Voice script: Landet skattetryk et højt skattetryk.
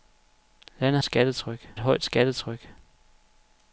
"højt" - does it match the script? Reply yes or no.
yes